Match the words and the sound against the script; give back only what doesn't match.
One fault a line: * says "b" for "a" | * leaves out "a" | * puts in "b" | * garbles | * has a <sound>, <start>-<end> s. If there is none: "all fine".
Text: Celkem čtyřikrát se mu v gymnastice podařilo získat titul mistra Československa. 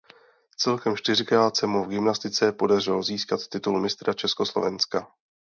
all fine